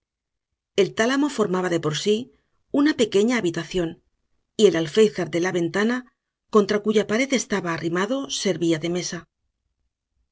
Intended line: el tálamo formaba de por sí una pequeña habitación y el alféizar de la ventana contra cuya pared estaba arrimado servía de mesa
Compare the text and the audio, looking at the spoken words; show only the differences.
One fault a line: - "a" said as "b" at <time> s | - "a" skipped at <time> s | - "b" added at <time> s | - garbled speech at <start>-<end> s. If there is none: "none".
none